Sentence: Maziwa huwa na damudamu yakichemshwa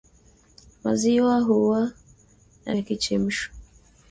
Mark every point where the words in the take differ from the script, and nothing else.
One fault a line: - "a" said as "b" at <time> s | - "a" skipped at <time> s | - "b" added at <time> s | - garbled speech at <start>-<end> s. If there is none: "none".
- "damudamu" skipped at 2.8 s